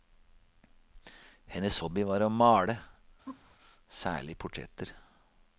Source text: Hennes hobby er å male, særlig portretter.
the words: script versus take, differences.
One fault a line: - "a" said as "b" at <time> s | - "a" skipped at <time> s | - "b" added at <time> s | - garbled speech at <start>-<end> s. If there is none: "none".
- "er" said as "var" at 2.0 s